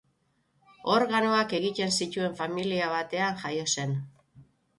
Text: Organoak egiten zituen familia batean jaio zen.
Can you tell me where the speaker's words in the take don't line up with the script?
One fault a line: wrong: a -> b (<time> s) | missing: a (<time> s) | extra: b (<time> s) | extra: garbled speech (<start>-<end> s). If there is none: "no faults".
no faults